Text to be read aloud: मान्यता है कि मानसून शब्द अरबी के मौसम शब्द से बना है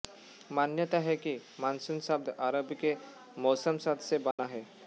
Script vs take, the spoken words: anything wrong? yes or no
no